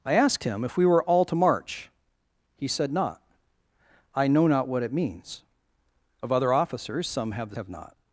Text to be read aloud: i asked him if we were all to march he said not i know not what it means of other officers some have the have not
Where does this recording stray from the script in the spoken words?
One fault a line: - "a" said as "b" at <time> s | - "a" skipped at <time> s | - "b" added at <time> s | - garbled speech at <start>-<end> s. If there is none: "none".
none